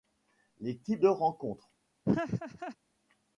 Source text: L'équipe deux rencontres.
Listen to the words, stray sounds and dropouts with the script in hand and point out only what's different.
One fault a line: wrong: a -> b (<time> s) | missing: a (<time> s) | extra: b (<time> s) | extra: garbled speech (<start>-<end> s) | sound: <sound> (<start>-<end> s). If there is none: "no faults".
sound: laugh (2.0-2.8 s)